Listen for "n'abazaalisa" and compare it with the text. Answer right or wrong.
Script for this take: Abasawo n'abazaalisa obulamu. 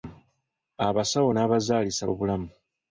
right